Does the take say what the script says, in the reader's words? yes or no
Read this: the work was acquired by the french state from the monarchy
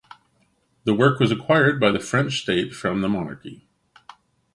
yes